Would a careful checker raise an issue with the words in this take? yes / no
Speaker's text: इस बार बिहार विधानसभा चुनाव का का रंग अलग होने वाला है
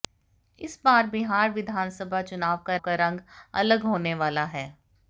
no